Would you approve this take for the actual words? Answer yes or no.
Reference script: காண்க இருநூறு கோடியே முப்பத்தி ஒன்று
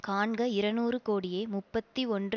yes